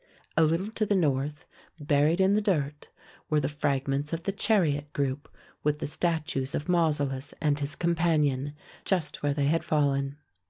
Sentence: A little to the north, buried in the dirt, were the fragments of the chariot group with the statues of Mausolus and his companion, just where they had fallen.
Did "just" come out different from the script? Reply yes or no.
no